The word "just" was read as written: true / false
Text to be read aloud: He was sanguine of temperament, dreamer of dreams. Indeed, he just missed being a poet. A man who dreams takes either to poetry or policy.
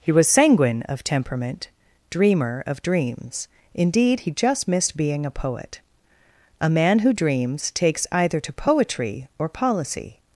true